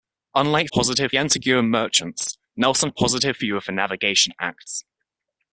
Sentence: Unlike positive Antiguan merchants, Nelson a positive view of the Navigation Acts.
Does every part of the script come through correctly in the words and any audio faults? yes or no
yes